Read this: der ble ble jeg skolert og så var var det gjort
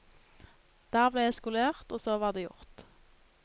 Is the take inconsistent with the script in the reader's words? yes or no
yes